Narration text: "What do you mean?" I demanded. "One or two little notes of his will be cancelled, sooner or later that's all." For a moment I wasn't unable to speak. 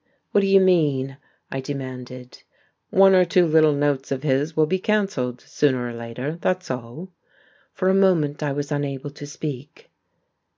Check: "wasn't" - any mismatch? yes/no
yes